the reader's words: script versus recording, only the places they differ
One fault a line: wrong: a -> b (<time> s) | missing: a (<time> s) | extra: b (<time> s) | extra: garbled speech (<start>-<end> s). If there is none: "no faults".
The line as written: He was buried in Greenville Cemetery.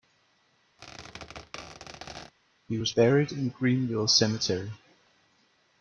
no faults